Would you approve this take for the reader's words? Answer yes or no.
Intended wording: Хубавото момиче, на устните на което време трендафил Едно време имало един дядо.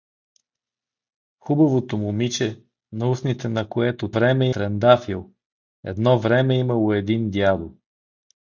yes